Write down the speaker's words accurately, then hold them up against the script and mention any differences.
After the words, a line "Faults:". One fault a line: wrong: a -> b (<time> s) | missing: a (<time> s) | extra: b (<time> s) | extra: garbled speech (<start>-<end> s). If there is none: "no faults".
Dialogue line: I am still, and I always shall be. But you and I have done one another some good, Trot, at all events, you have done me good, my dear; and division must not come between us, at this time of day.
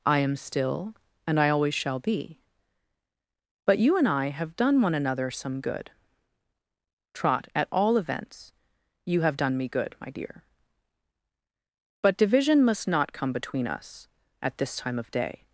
I am still, and I always shall be. But you and I have done one another some good, Trot, at all events, you have done me good, my dear; but division must not come between us, at this time of day.
Faults:
wrong: and -> but (12.0 s)